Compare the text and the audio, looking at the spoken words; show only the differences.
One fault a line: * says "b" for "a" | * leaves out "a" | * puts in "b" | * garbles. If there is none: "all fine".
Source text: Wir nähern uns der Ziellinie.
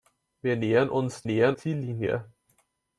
* says "nähern" for "der"